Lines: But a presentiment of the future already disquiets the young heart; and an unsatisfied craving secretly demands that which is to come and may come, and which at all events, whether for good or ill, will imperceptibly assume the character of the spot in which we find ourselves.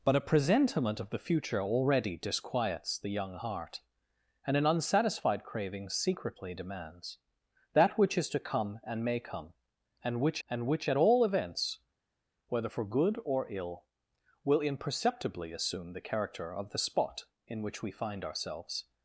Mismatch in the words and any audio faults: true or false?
true